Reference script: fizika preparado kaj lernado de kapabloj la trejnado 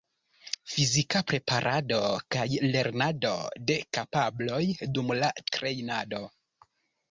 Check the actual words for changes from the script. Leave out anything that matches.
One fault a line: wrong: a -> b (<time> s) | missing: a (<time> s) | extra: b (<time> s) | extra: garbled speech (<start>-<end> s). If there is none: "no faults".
extra: dum (5.0 s)